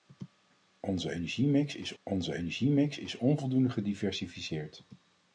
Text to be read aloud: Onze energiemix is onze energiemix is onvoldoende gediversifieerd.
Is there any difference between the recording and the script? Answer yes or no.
no